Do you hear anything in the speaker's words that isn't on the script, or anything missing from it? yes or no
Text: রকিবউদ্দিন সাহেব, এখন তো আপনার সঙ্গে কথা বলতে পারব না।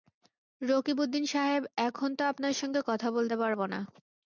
no